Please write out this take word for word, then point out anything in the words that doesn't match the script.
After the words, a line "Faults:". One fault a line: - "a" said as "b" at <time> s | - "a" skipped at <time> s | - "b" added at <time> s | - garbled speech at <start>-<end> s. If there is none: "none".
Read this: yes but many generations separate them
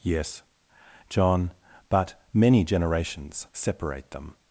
yes john but many generations separate them
Faults:
- "john" added at 1.1 s